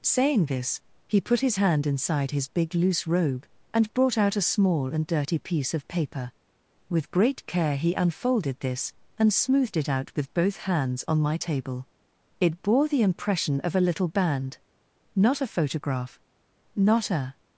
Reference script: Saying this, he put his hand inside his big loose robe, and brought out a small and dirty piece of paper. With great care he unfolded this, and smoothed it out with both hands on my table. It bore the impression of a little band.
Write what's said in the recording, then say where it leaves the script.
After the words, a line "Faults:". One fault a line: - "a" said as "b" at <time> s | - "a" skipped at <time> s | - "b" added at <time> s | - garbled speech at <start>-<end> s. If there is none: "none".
Saying this, he put his hand inside his big loose robe, and brought out a small and dirty piece of paper. With great care he unfolded this, and smoothed it out with both hands on my table. It bore the impression of a little band. Not a photograph. Not a
Faults:
- "Not a photograph Not a" added at 15.1 s